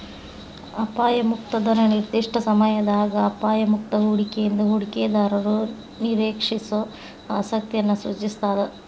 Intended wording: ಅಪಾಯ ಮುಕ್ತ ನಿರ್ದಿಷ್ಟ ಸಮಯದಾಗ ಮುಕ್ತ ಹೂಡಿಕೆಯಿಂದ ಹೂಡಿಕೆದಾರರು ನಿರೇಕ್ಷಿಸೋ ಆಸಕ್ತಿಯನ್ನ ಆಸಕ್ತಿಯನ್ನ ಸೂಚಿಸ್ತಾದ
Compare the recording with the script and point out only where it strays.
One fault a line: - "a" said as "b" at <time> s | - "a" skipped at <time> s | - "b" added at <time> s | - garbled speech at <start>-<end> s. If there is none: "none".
- "ದರ" added at 1.6 s
- "ಅಪಾಯ" added at 3.3 s
- "ಆಸಕ್ತಿಯನ್ನ" skipped at 8.0 s